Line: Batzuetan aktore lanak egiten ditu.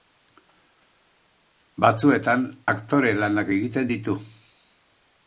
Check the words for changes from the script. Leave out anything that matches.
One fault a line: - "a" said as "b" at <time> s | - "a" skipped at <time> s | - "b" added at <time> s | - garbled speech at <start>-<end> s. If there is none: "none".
none